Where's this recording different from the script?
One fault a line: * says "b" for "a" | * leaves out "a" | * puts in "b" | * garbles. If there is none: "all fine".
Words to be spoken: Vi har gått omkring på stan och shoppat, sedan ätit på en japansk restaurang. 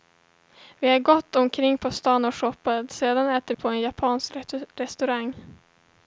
all fine